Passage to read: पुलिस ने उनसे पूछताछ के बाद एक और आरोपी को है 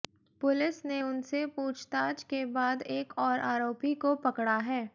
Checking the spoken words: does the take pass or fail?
fail